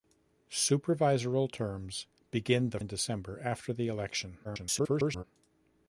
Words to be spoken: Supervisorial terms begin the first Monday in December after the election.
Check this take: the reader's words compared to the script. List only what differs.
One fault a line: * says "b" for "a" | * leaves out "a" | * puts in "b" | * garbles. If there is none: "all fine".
* leaves out "first Monday"
* garbles